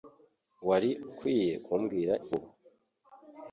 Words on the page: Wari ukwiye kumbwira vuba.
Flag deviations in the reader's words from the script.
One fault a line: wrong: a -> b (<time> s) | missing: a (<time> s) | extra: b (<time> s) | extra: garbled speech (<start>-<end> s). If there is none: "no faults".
no faults